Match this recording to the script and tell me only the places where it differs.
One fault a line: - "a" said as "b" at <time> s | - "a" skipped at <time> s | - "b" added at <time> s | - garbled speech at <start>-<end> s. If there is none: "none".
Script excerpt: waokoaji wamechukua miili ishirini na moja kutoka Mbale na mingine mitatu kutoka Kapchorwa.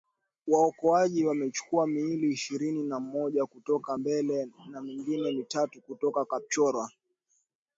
none